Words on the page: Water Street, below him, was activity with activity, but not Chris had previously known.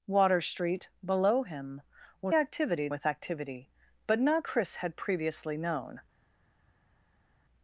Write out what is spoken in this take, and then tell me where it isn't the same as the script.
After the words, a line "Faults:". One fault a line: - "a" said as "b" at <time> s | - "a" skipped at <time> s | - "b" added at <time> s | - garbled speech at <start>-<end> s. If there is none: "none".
Water Street, below him, was activity with activity, but not Chris had previously known.
Faults:
none